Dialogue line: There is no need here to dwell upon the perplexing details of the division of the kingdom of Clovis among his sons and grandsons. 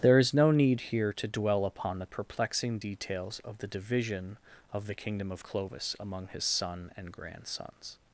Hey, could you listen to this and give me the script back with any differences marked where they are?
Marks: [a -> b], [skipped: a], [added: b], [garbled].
There is no need here to dwell upon the perplexing details of the division of the kingdom of Clovis among his [sons -> son] and grandsons.